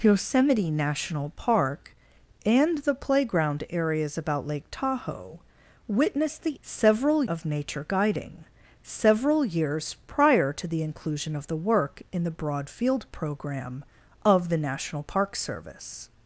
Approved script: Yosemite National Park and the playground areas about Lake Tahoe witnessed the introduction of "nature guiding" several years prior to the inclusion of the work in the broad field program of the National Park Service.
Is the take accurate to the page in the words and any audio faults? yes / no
no